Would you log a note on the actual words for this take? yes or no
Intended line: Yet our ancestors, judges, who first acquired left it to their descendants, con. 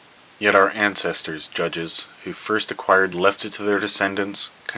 no